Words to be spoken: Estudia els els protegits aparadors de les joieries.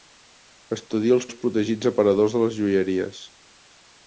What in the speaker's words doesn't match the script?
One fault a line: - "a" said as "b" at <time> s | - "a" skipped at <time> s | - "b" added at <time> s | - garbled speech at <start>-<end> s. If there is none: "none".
none